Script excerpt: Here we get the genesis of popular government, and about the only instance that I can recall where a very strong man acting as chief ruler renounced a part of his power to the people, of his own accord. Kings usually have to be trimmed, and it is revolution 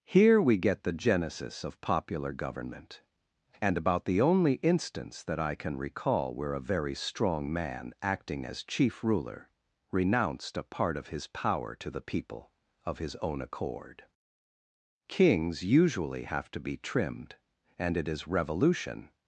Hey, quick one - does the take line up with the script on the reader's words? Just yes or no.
yes